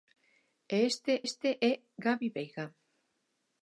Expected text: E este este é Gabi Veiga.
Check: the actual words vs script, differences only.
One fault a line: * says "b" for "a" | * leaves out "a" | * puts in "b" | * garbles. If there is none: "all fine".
all fine